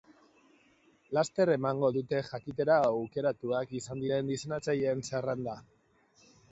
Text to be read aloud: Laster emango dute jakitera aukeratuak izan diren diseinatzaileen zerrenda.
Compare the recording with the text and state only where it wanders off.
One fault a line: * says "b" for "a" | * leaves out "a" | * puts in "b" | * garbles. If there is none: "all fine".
all fine